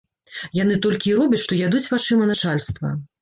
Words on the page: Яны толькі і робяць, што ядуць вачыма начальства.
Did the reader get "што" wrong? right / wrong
right